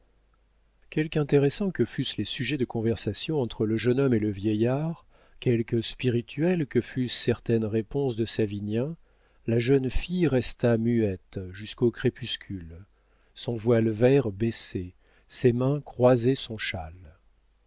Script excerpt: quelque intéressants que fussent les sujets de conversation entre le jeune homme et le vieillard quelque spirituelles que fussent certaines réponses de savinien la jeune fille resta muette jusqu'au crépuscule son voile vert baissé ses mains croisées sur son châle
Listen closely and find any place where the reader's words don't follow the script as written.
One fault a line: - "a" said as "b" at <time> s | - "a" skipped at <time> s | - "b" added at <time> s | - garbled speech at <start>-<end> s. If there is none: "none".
- "sur" skipped at 16.4 s